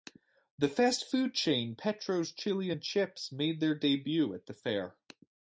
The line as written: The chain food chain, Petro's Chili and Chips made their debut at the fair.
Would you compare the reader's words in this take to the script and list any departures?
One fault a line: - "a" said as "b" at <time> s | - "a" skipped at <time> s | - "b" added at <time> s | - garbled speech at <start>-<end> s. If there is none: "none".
- "chain" said as "fast" at 0.7 s